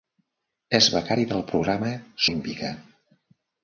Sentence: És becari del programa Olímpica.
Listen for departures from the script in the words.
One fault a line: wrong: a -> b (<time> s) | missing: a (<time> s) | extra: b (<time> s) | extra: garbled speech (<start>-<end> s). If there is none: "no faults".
no faults